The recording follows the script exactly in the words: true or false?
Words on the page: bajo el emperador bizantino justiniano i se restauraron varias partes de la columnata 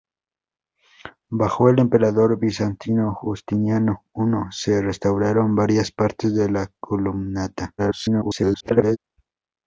false